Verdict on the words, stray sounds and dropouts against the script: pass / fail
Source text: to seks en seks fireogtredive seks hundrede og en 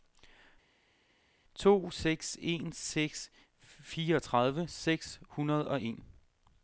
pass